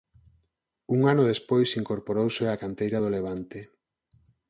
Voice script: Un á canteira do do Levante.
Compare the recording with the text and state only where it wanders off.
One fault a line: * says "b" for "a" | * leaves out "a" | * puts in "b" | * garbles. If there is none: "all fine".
* puts in "ano despois incorporouse"
* leaves out "do"